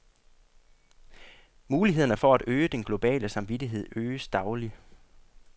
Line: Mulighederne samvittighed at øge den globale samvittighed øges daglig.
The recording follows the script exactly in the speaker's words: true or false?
false